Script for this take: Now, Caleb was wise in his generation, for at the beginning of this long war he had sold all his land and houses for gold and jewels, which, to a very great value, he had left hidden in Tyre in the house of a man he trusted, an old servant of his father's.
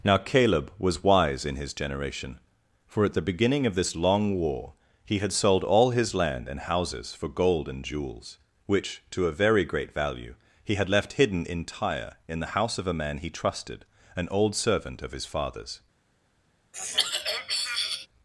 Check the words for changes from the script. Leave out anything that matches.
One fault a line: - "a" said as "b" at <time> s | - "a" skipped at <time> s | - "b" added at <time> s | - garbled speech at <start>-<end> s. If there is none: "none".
none